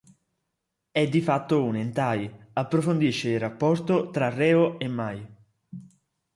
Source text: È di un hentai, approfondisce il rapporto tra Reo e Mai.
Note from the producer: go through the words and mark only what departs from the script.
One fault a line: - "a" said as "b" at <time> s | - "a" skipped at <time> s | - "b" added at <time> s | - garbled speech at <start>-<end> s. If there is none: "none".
- "fatto" added at 1.2 s